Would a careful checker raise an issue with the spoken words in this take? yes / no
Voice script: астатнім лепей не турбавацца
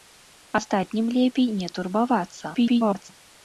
yes